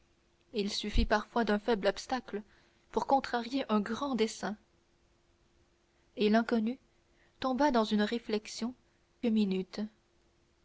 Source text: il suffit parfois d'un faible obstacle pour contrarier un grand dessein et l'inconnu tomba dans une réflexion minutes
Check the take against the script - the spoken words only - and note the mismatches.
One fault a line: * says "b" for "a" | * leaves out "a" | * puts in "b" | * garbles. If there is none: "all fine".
all fine